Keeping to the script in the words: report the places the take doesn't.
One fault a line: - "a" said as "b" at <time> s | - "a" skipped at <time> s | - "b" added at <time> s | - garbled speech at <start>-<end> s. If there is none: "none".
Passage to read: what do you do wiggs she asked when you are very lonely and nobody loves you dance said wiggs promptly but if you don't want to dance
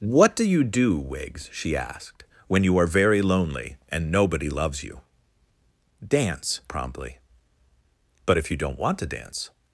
- "said wiggs" skipped at 6.6 s